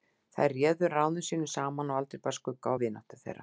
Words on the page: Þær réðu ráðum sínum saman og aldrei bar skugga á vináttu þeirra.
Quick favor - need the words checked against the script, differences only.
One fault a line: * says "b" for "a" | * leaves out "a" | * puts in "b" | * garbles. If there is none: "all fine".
all fine